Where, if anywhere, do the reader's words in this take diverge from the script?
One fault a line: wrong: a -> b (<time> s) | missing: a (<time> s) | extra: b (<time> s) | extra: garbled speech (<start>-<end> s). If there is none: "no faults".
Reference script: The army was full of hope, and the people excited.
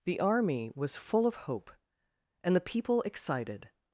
no faults